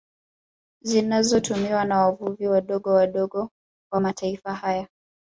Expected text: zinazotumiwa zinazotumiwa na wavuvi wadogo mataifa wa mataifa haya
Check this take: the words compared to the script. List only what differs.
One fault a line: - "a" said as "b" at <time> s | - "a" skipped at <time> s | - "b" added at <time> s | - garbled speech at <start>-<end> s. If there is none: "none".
- "zinazotumiwa" skipped at 1.9 s
- "mataifa" said as "wadogo" at 2.9 s